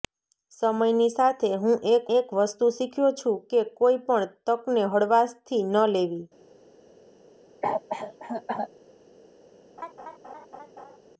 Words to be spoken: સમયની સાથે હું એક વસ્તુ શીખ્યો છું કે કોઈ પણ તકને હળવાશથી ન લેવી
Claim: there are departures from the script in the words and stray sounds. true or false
true